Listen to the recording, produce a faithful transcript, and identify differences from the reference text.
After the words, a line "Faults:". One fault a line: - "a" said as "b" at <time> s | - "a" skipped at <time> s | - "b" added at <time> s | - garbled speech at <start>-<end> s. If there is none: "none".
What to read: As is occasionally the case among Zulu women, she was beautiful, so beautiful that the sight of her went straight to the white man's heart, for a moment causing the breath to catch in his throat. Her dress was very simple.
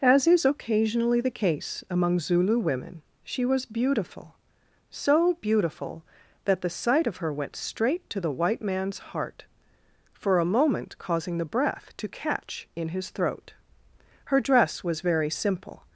As is occasionally the case among Zulu women, she was beautiful, so beautiful that the sight of her went straight to the white man's heart, for a moment causing the breath to catch in his throat. Her dress was very simple.
Faults:
none